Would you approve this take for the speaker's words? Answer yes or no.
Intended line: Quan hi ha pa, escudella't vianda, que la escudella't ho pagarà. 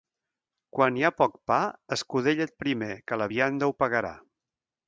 no